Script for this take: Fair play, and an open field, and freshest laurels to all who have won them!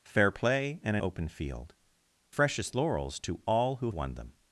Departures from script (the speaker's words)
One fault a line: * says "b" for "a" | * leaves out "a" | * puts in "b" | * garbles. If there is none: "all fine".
* leaves out "an"
* leaves out "and"
* leaves out "have"